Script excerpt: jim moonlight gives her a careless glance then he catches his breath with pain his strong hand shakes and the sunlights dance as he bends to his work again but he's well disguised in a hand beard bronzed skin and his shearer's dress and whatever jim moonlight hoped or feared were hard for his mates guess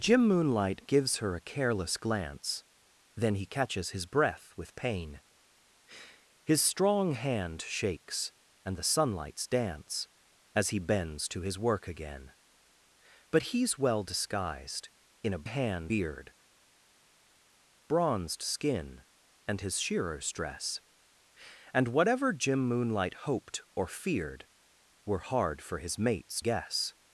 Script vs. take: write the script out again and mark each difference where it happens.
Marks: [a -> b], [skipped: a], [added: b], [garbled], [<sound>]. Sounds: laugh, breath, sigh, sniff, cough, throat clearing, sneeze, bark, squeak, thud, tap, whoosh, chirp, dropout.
jim moonlight gives her a careless glance then he catches his breath with pain his strong hand shakes and the sunlights dance as he bends to his work again but he's well disguised in a hand beard bronzed skin and his shearer's dress and whatever jim moonlight hoped or feared were hard for his mates guess